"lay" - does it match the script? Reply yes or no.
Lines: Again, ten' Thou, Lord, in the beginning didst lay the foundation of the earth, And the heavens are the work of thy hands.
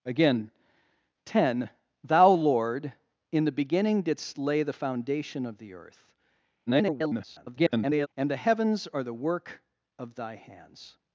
yes